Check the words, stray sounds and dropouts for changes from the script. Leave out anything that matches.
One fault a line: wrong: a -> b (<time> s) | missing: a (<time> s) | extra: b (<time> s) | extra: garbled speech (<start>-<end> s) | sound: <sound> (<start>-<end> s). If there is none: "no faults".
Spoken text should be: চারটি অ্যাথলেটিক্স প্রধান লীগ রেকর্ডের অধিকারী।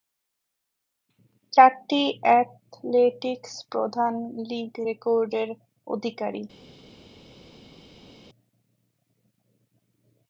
no faults